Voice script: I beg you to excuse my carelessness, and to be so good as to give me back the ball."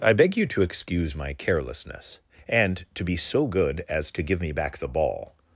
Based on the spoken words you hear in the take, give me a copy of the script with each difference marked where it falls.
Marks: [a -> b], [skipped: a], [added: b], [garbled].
I beg you to excuse my carelessness, and to be so good as to give me back the ball."